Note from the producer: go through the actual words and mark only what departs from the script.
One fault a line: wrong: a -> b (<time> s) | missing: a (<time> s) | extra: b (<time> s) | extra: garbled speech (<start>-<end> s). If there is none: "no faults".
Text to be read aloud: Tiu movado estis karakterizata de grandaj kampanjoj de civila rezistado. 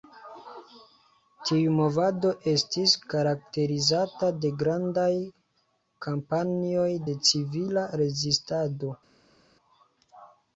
no faults